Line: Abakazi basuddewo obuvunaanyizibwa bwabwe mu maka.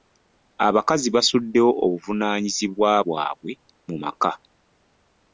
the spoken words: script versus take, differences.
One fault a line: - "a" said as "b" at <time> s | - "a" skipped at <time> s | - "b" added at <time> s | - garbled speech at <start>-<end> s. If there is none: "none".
none